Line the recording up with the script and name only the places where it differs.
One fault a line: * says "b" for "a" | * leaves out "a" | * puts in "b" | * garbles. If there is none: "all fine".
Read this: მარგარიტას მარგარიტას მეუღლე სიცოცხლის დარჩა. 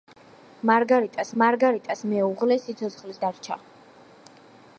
all fine